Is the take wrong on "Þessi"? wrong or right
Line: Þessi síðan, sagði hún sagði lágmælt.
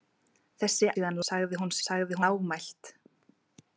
right